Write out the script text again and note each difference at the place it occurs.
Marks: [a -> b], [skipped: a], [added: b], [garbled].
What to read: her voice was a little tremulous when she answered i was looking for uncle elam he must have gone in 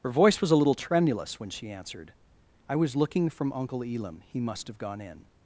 her voice was a little tremulous when she answered i was looking [for -> from] uncle elam he must have gone in